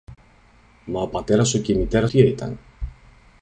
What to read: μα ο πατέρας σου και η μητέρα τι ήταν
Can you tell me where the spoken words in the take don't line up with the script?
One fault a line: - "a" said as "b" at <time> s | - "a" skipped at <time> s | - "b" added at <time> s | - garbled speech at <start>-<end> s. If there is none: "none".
none